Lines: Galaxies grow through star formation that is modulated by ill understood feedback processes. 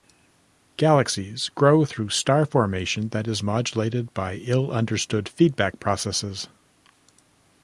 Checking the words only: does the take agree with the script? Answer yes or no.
yes